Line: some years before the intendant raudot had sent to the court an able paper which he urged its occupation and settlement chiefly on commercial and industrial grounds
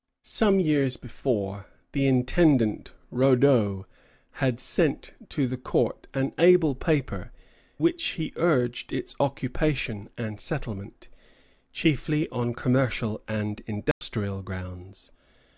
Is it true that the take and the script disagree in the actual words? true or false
false